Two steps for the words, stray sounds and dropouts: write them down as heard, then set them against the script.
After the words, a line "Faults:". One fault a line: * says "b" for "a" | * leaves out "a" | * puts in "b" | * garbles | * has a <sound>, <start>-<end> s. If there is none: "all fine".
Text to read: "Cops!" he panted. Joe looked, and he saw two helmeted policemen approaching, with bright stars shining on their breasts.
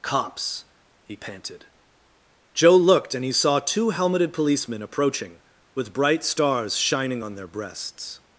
"Cops!" he panted. Joe looked, and he saw two helmeted policemen approaching, with bright stars shining on their breasts.
Faults:
all fine